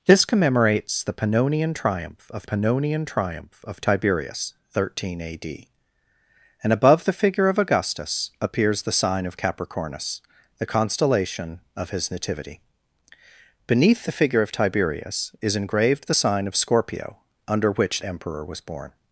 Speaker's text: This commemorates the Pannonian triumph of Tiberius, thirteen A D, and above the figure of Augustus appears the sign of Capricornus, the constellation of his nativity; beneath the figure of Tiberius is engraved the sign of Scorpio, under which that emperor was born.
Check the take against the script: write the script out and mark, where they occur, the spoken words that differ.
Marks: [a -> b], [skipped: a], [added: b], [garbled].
This commemorates the Pannonian triumph of [added: Pannonian triumph of] Tiberius, thirteen A D, and above the figure of Augustus appears the sign of Capricornus, the constellation of his nativity; beneath the figure of Tiberius is engraved the sign of Scorpio, under which [skipped: that] emperor was born.